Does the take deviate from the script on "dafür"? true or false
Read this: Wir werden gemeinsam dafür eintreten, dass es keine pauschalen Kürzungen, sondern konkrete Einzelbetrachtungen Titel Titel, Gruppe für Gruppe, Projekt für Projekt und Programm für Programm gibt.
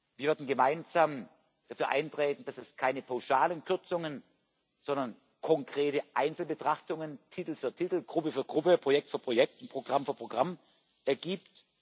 false